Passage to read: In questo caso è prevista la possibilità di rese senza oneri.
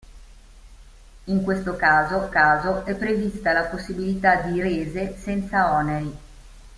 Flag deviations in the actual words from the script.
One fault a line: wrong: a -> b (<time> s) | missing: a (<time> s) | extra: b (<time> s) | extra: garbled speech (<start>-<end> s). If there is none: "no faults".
extra: caso (2.3 s)